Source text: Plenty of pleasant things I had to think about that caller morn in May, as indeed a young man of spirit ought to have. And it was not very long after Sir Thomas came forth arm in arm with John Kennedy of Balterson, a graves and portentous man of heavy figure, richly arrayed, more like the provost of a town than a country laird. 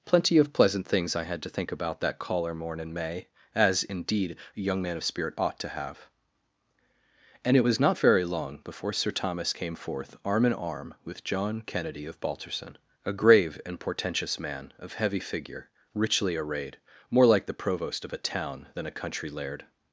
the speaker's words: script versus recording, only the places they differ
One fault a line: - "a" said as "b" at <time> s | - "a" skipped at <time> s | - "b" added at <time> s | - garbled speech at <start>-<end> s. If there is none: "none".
- "after" said as "before" at 8.6 s
- "graves" said as "grave" at 13.1 s